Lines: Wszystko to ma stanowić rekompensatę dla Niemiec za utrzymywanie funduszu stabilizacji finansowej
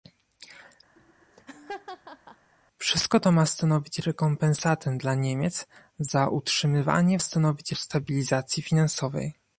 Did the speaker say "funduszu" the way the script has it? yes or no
no